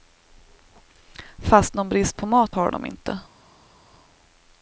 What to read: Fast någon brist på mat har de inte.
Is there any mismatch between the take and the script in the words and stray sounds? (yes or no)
no